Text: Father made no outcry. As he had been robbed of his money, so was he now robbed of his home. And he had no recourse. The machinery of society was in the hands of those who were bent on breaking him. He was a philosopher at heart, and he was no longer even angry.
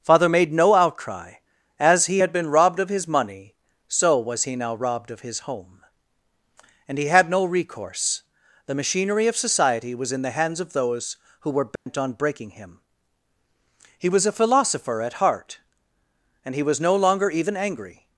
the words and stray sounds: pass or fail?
fail